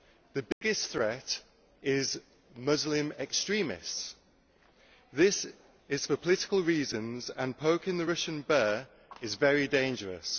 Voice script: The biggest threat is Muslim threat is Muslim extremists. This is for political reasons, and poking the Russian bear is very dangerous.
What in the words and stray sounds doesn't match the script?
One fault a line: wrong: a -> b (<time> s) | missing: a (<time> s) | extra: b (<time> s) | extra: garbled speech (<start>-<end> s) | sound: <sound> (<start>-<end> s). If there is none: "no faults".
sound: dropout (0.5-0.6 s)
missing: threat is Muslim (3.1 s)